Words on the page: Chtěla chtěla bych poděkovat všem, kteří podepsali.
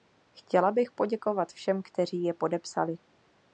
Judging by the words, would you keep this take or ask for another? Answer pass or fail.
fail